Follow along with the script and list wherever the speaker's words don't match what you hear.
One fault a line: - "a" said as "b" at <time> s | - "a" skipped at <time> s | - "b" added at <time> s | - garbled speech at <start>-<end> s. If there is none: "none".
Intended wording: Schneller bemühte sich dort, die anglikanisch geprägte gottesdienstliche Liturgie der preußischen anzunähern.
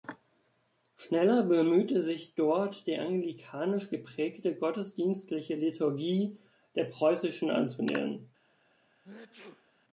none